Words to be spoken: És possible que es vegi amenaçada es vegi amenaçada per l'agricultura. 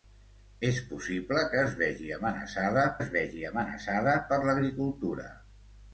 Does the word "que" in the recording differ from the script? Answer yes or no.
no